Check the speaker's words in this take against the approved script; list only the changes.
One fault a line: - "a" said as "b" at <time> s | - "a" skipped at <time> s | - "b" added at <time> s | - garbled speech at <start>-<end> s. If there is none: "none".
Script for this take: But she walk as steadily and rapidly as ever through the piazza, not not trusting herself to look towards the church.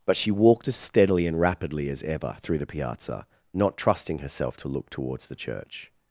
- "walk" said as "walked" at 0.3 s
- "not" skipped at 3.8 s